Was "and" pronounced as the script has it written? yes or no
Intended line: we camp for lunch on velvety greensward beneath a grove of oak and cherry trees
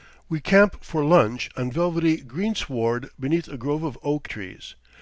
no